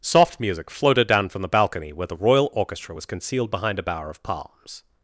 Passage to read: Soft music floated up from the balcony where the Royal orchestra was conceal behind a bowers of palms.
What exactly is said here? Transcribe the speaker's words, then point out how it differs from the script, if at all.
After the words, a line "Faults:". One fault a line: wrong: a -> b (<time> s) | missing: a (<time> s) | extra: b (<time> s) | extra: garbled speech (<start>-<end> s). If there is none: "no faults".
Soft music floated down from the balcony where the Royal orchestra was concealed behind a bower of palms.
Faults:
wrong: up -> down (1.1 s)
wrong: conceal -> concealed (3.0 s)
wrong: bowers -> bower (3.8 s)